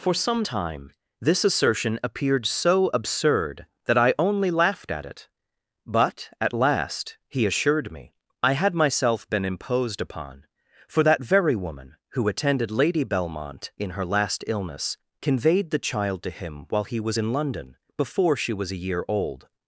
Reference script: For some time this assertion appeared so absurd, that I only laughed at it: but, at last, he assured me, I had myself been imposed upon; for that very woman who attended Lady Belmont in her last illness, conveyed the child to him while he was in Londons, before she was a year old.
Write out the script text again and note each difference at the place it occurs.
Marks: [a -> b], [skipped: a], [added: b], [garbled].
For some time this assertion appeared so absurd, that I only laughed at it: but, at last, he assured me, I had myself been imposed upon; for that very woman who attended Lady Belmont in her last illness, conveyed the child to him while he was in [Londons, -> London] before she was a year old.